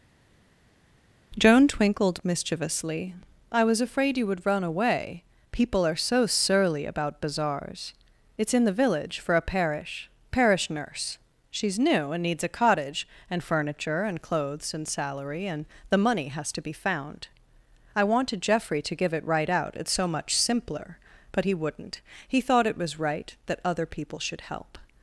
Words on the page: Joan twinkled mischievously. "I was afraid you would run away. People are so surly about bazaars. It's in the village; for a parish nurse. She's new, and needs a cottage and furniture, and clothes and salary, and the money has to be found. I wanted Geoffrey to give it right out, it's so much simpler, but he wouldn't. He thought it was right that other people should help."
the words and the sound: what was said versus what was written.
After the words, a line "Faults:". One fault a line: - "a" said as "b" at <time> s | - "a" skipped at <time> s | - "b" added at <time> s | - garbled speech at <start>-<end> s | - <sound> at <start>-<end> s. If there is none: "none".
Joan twinkled mischievously. "I was afraid you would run away. People are so surly about bazaars. It's in the village; for a parish parish nurse. She's new, and needs a cottage and furniture, and clothes and salary, and the money has to be found. I wanted Geoffrey to give it right out, it's so much simpler, but he wouldn't. He thought it was right that other people should help."
Faults:
- "parish" added at 10.3 s